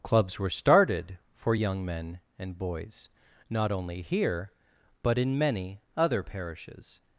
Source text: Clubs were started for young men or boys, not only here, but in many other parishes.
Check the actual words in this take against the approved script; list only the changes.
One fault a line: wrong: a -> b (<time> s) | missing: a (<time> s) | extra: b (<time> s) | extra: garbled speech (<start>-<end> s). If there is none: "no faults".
wrong: or -> and (2.4 s)